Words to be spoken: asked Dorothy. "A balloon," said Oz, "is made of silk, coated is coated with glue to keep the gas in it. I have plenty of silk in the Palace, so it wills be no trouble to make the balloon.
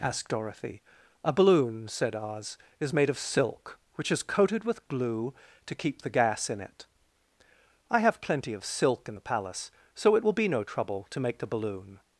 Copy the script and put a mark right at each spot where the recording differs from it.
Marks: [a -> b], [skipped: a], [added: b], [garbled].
asked Dorothy. "A balloon," said Oz, "is made of silk, [coated -> which] is coated with glue to keep the gas in it. I have plenty of silk in the Palace, so it [wills -> will] be no trouble to make the balloon.